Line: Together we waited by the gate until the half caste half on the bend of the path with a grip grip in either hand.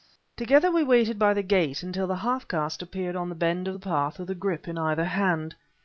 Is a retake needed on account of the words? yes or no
yes